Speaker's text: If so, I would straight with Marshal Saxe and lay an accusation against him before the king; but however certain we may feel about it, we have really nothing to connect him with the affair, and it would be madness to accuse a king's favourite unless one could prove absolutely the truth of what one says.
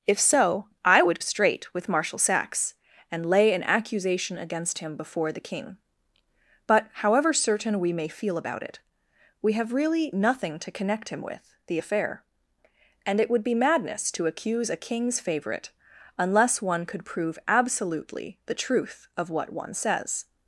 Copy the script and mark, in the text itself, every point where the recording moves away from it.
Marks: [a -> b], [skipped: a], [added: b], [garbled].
If so, I would straight with Marshal Saxe and lay an accusation against him before the king; but however certain we may feel about it, we have really nothing to connect him with the affair, and it would be madness to accuse a king's favourite unless one could prove absolutely the truth of what one says.